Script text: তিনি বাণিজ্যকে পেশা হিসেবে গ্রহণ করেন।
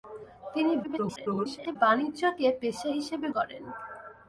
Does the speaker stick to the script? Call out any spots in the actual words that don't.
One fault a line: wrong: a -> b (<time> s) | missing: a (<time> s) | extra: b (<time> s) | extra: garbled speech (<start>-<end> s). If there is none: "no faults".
extra: garbled speech (0.8-1.8 s)
missing: গ্রহণ (3.3 s)